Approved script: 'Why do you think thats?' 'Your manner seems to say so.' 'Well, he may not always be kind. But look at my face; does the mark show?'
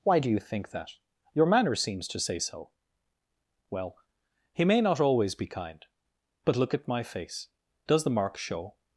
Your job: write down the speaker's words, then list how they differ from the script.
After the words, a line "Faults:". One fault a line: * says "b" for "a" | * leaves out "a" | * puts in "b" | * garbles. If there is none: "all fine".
'Why do you think that?' 'Your manner seems to say so.' 'Well, he may not always be kind. But look at my face; does the mark show?'
Faults:
* says "that" for "thats"